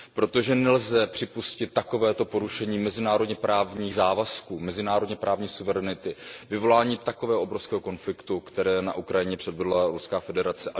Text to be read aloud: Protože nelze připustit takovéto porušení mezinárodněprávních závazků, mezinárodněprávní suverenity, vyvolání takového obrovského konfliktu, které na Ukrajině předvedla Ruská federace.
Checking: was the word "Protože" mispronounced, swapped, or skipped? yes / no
no